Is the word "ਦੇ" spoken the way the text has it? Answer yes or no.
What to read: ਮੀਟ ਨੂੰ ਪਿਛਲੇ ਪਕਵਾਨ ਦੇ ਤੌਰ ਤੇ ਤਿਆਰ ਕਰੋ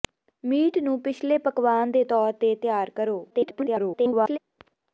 yes